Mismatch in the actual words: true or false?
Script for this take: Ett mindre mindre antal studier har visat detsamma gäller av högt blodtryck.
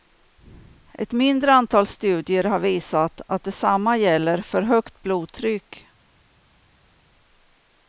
true